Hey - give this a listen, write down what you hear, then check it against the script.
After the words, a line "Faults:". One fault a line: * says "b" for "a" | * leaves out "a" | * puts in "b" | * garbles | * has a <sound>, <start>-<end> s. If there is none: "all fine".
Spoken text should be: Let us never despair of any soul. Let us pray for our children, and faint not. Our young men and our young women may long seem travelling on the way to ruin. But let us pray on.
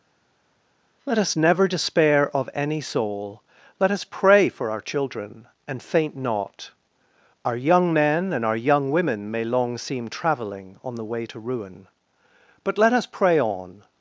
Let us never despair of any soul. Let us pray for our children, and faint not. Our young men and our young women may long seem travelling on the way to ruin. But let us pray on.
Faults:
all fine